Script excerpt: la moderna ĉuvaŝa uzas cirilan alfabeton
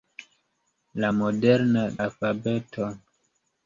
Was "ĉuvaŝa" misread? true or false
true